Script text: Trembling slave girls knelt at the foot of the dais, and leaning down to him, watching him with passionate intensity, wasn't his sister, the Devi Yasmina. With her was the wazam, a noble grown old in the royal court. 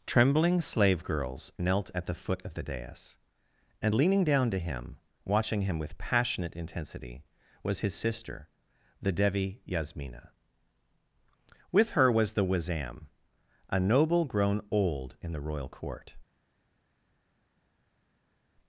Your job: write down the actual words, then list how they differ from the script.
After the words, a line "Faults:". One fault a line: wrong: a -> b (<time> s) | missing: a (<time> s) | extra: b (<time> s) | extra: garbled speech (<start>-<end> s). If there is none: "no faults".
Trembling slave girls knelt at the foot of the dais, and leaning down to him, watching him with passionate intensity, was his sister, the Devi Yasmina. With her was the wazam, a noble grown old in the royal court.
Faults:
wrong: wasn't -> was (7.6 s)